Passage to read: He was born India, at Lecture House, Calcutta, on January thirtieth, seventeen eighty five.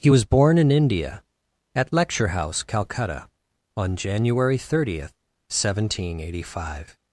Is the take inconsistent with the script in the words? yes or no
yes